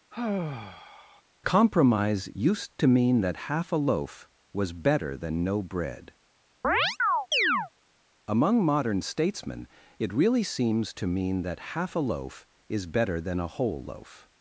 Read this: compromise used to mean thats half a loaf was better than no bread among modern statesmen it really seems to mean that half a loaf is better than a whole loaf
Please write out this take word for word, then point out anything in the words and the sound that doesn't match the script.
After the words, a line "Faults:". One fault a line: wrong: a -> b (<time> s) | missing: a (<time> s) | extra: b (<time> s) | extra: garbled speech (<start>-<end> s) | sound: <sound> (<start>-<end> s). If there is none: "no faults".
compromise used to mean that half a loaf was better than no bread among modern statesmen it really seems to mean that half a loaf is better than a whole loaf
Faults:
sound: sigh (0.1-1.2 s)
wrong: thats -> that (3.2 s)
sound: chirp (6.6-7.7 s)